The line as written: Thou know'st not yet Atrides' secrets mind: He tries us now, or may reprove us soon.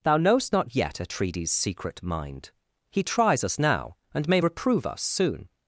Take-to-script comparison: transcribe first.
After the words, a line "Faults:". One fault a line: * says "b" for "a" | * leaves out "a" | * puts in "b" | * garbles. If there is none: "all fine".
Thou know'st not yet Atrides' secret mind: He tries us now, and may reprove us soon.
Faults:
* says "secret" for "secrets"
* says "and" for "or"